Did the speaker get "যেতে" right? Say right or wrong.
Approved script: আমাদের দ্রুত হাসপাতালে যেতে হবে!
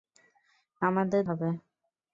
wrong